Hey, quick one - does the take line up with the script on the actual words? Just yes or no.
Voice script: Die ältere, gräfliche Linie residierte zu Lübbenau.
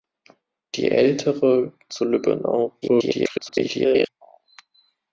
no